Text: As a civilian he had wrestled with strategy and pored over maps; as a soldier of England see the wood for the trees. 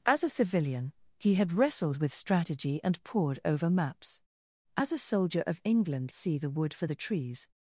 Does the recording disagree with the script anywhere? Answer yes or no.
no